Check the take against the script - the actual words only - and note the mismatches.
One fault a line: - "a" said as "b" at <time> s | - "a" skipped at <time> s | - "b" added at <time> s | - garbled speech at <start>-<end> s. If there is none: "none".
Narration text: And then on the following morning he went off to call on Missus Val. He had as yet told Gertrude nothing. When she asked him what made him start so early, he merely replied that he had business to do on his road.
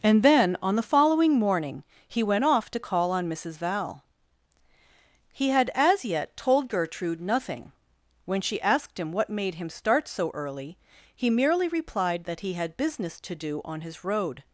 none